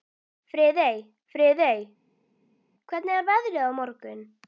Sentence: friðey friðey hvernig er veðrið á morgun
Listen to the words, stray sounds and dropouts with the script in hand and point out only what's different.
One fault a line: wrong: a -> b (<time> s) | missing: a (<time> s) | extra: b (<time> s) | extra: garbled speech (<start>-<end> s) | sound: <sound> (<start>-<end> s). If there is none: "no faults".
no faults